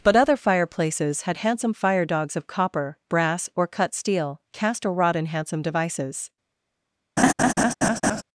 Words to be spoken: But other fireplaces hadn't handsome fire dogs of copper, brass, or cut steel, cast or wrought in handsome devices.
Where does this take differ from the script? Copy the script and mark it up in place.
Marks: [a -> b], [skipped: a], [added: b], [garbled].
But other fireplaces [hadn't -> had] handsome fire dogs of copper, brass, or cut steel, cast or wrought in handsome devices.